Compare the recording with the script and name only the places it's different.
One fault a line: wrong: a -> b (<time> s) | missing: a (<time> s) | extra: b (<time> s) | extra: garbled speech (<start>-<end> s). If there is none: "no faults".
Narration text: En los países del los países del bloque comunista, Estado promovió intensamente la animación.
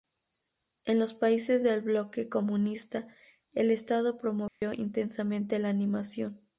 missing: los países del (1.8 s)
extra: el (3.5 s)